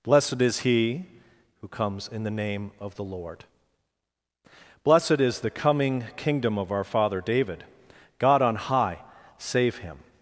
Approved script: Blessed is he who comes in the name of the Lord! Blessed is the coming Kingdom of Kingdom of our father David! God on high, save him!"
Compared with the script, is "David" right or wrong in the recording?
right